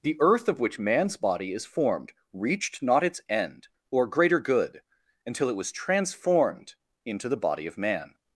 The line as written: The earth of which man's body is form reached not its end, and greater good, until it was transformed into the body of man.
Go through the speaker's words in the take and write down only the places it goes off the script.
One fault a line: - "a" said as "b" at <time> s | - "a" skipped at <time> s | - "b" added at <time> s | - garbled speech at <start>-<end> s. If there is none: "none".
- "form" said as "formed" at 1.6 s
- "and" said as "or" at 3.9 s